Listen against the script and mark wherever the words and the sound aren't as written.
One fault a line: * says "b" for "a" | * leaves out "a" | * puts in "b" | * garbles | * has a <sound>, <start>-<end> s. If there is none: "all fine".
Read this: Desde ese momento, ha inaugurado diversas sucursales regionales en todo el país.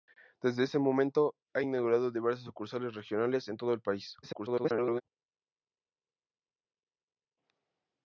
* garbles